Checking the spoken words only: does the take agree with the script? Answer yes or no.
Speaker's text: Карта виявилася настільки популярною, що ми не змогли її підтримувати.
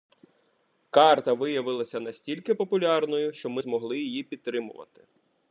no